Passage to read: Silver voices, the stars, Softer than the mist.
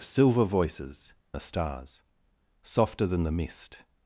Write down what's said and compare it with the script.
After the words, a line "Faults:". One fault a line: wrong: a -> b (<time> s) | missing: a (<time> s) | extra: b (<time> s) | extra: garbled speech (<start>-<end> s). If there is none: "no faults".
Silver voices, the stars, Softer than the mist.
Faults:
no faults